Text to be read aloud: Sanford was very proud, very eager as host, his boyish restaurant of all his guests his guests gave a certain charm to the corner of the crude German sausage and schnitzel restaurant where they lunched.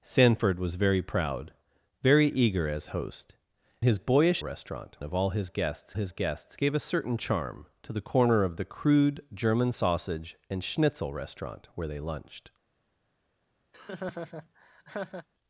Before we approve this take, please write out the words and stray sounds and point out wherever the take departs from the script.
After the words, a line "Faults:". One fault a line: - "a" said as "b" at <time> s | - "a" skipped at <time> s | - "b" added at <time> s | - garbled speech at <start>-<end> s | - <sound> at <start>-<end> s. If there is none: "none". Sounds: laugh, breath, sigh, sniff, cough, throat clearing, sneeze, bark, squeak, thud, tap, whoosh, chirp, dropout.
Sanford was very proud, very eager as host, his boyish restaurant of all his guests his guests gave a certain charm to the corner of the crude German sausage and schnitzel restaurant where they lunched.
Faults:
- laugh at 13.7-15.3 s